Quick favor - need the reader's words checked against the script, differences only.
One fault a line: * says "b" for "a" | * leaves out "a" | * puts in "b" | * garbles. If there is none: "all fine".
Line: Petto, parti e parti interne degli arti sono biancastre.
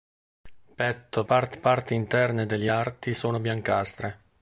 all fine